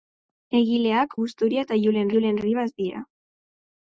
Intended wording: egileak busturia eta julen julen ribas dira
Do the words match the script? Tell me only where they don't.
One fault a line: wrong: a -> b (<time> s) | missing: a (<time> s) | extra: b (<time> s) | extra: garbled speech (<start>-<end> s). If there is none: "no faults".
no faults